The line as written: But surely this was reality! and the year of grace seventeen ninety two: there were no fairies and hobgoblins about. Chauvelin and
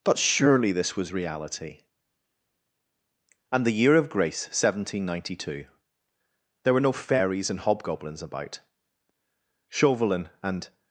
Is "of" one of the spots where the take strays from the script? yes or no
no